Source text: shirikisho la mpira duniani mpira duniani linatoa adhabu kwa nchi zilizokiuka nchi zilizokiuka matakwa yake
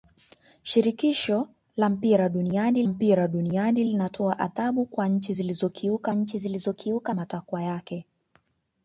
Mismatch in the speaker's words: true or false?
false